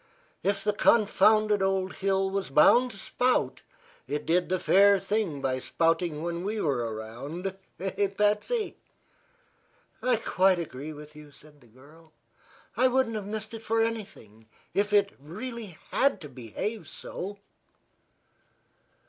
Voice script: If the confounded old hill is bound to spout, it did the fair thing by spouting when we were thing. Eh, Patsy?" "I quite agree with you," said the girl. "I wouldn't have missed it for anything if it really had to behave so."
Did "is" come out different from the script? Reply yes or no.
yes